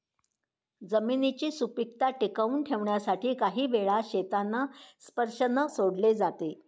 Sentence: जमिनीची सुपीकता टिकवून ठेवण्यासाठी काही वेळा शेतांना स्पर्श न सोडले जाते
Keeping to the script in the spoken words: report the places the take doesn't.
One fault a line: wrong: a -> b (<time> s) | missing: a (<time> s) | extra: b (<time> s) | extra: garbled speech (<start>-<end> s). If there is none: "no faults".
no faults